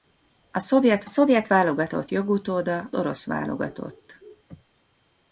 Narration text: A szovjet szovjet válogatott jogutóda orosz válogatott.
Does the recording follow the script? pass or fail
pass